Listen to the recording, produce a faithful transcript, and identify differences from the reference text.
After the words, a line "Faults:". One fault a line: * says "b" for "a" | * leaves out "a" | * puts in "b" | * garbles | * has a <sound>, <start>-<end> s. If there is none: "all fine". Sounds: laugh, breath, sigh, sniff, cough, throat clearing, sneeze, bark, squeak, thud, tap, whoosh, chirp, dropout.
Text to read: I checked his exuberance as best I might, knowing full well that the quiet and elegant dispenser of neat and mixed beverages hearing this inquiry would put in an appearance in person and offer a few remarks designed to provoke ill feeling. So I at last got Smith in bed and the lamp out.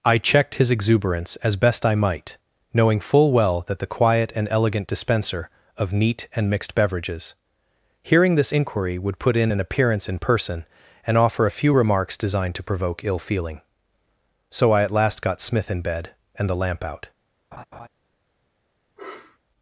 I checked his exuberance as best I might, knowing full well that the quiet and elegant dispenser of neat and mixed beverages hearing this inquiry would put in an appearance in person and offer a few remarks designed to provoke ill feeling. So I at last got Smith in bed and the lamp out.
Faults:
* has a laugh, 17.5-17.9 s
* has a sniff, 19.0-19.4 s